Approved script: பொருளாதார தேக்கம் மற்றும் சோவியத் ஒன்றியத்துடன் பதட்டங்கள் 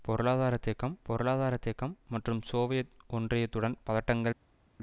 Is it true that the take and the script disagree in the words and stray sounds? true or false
true